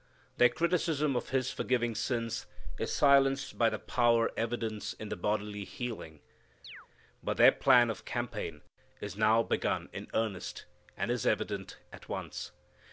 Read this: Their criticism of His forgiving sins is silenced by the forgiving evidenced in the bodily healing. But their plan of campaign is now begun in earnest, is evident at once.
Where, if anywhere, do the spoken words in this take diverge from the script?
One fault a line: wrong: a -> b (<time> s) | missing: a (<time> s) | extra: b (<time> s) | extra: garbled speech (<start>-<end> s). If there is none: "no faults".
wrong: forgiving -> power (3.8 s)
extra: and (11.0 s)